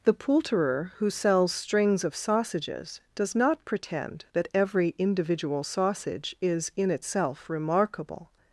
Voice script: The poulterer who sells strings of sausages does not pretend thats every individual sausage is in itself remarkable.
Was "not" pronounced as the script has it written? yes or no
yes